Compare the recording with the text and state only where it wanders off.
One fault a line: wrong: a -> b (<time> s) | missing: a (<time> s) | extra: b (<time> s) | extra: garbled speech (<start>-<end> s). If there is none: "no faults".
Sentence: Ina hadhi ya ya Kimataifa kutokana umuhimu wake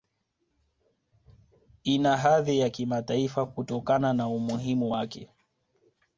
missing: ya (2.7 s)
extra: na (4.1 s)